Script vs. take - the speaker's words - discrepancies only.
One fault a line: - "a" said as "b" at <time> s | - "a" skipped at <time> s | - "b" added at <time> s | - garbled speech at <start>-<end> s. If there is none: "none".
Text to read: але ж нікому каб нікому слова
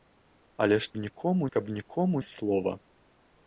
none